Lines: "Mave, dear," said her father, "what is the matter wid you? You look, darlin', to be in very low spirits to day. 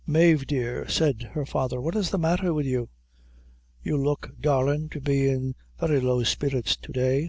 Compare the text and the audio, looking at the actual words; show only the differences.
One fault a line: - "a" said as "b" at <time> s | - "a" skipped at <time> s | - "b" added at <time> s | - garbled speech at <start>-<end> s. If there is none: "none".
none